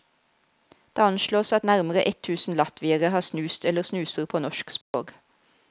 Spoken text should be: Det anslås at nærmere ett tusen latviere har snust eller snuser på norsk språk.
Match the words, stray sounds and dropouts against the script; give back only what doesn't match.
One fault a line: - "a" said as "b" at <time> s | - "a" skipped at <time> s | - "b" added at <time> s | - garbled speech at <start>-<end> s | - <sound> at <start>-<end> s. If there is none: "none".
- dropout at 4.8-4.9 s